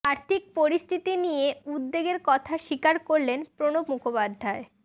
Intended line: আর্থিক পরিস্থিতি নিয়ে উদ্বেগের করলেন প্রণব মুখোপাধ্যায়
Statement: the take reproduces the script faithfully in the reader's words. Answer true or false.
false